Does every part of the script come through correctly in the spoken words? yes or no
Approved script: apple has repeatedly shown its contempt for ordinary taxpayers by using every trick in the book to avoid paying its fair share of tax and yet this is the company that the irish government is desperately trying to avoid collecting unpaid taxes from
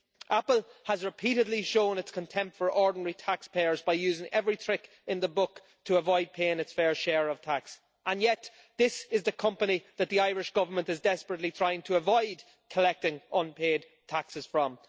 yes